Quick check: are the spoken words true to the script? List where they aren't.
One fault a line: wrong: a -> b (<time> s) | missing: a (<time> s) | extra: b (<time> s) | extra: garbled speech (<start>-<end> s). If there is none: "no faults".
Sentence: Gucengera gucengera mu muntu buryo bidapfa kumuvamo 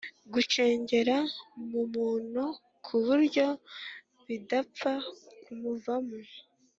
missing: gucengera (1.2 s)
extra: ku (2.9 s)